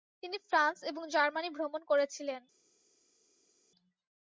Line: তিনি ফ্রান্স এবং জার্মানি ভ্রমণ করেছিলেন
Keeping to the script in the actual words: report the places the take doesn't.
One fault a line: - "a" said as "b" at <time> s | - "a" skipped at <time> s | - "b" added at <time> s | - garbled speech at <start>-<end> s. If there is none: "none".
none